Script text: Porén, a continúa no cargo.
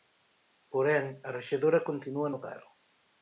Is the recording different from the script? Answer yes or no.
yes